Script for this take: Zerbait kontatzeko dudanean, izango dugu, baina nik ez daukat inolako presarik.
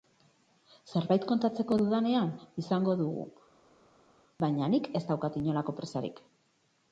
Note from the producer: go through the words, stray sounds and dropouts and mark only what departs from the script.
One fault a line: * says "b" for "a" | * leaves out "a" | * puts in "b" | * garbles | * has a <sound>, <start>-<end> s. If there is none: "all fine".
all fine